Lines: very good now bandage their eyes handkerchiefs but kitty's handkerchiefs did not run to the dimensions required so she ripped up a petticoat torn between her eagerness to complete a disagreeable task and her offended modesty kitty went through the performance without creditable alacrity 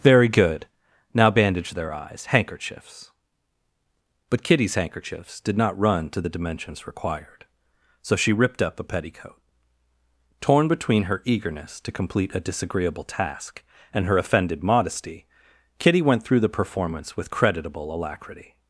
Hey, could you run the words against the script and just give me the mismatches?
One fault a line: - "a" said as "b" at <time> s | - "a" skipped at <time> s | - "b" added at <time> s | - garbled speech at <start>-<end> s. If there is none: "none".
- "without" said as "with" at 17.2 s